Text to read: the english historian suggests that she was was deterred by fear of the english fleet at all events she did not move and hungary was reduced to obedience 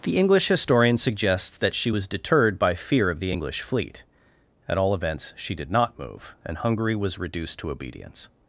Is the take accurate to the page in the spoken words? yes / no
no